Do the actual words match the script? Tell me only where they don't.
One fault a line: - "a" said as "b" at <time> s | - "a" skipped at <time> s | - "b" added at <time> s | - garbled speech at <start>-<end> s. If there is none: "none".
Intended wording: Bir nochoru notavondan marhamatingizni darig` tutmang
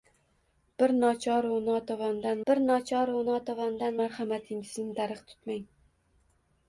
- "bir nochoru notavondan" added at 2.5 s